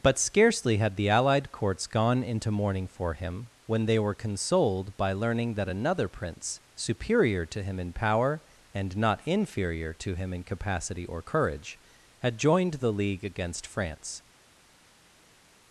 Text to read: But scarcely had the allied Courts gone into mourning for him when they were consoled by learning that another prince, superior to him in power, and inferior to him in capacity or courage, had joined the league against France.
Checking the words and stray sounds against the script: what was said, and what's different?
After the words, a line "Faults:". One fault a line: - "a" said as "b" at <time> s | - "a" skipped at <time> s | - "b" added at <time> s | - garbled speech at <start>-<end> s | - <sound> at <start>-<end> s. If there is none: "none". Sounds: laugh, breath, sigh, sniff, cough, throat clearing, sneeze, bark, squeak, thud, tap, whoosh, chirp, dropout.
But scarcely had the allied Courts gone into mourning for him when they were consoled by learning that another prince, superior to him in power, and not inferior to him in capacity or courage, had joined the league against France.
Faults:
- "not" added at 9.0 s